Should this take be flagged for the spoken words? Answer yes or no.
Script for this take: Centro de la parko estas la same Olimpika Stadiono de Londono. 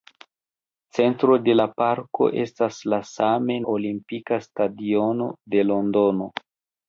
no